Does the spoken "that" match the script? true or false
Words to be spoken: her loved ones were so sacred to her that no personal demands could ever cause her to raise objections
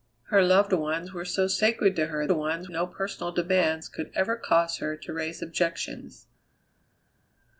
false